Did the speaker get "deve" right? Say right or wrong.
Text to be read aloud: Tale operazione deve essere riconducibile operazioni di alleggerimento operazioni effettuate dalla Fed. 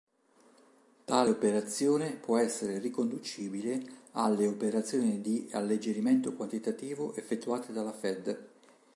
wrong